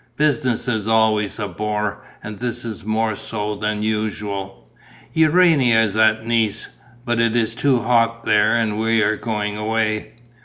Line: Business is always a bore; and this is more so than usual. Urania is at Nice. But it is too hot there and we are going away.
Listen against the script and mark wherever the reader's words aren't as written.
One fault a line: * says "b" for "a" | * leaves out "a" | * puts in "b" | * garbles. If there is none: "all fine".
all fine